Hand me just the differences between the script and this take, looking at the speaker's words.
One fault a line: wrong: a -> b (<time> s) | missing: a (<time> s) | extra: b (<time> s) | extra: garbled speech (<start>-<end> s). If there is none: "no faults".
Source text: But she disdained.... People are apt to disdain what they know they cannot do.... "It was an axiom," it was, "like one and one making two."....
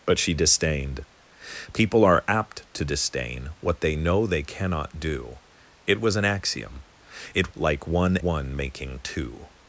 missing: was (7.5 s)
missing: and (8.2 s)